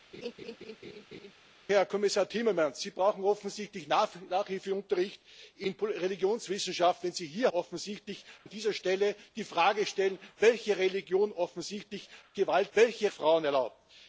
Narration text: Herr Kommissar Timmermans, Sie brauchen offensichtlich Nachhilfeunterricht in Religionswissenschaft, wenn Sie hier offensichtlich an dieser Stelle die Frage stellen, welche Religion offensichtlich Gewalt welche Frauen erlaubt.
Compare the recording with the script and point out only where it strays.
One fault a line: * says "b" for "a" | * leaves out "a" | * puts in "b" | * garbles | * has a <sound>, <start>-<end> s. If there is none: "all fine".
* has a laugh, 0.1-1.3 s